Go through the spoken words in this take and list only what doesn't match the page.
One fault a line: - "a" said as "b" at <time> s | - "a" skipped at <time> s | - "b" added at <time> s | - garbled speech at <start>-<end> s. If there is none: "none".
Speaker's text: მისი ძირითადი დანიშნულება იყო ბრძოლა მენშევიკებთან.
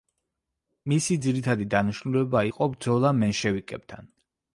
none